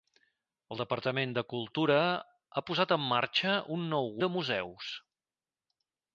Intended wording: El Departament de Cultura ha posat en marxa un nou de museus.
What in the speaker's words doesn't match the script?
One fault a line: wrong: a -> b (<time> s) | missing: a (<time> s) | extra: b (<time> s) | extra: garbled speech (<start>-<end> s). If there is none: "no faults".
no faults